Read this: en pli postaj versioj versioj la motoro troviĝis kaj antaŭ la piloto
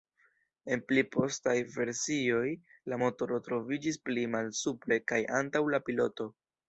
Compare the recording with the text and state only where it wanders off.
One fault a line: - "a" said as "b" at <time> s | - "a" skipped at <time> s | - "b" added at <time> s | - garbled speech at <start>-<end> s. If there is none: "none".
- "versioj" skipped at 2.5 s
- "pli malsupre" added at 4.1 s